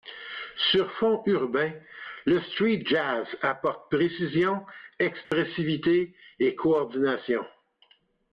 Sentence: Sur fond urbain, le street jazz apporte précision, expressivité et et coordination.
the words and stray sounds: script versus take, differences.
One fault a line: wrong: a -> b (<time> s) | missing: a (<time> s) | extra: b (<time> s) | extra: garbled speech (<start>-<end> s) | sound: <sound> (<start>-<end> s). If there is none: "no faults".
sound: dropout (5.2-5.3 s)
missing: et (6.6 s)